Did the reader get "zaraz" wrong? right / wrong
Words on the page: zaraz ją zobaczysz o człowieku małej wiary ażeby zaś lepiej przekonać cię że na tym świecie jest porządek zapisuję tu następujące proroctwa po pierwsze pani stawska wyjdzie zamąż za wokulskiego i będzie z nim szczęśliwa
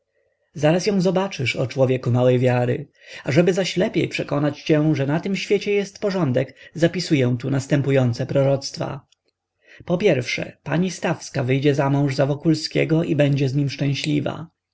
right